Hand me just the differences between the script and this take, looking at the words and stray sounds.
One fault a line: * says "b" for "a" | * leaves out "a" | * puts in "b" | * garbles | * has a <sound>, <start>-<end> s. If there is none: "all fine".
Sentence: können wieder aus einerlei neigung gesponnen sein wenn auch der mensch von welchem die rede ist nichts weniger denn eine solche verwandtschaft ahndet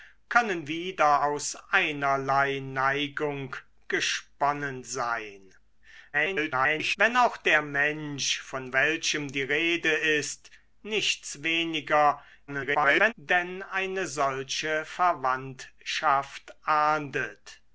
* garbles
* garbles